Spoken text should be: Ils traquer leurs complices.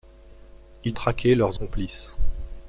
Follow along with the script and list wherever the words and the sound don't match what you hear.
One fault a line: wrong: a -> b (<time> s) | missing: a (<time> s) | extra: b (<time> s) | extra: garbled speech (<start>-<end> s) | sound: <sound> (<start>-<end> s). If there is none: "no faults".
no faults